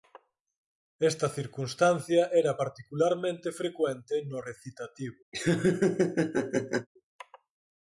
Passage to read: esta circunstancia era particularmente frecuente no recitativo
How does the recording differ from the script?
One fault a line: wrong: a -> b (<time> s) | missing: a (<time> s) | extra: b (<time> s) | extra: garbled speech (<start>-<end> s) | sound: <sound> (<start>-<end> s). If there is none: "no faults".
sound: laugh (5.3-6.9 s)